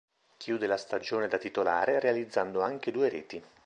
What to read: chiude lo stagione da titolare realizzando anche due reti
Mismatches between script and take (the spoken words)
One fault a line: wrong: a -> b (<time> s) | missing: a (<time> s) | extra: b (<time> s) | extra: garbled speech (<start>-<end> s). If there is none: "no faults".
wrong: lo -> la (0.7 s)